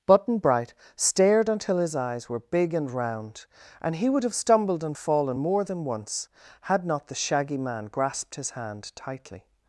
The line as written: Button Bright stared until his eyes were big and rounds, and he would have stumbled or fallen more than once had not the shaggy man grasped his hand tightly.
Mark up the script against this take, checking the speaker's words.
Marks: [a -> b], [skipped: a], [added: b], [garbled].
Button Bright stared until his eyes were big and [rounds, -> round] and he would have stumbled [or -> and] fallen more than once had not the shaggy man grasped his hand tightly.